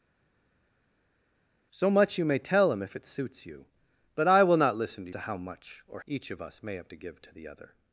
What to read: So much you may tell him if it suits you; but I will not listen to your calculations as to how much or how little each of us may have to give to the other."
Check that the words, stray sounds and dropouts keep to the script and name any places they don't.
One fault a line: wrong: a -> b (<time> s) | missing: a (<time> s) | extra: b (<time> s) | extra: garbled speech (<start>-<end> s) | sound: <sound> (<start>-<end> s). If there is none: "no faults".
missing: your calculations as (5.1 s)
missing: how little (6.0 s)